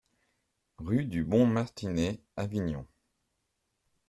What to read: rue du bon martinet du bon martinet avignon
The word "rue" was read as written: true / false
true